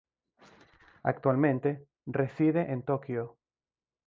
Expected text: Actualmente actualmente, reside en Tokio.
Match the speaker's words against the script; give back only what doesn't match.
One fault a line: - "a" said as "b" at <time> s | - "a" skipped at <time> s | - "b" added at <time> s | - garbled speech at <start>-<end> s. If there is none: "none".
- "actualmente" skipped at 1.9 s